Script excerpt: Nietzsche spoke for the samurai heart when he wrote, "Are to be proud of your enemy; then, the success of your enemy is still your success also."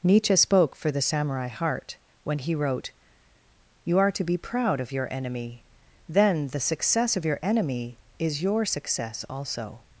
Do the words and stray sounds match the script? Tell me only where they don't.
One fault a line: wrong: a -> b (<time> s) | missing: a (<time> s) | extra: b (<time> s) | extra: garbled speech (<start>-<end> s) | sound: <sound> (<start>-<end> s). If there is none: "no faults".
extra: You (3.8 s)
missing: still (8.4 s)